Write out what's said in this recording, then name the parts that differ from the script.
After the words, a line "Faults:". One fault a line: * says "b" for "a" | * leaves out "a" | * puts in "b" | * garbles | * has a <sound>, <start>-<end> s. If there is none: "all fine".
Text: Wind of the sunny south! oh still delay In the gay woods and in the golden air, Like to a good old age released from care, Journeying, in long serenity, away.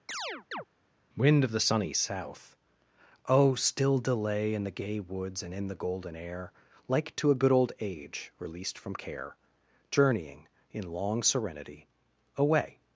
Wind of the sunny south! oh still delay In the gay woods and in the golden air, Like to a good old age released from care, Journeying, in long serenity, away.
Faults:
* has a chirp, 0.1-0.6 s